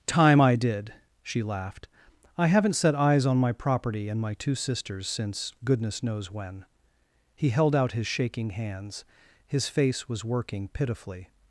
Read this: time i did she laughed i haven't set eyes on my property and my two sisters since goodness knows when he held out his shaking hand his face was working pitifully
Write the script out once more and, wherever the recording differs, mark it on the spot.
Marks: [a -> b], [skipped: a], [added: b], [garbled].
time i did she laughed i haven't set eyes on my property and my two sisters since goodness knows when he held out his shaking [hand -> hands] his face was working pitifully